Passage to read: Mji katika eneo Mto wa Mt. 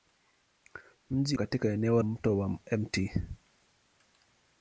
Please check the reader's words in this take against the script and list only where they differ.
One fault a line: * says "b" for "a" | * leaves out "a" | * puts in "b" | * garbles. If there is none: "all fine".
all fine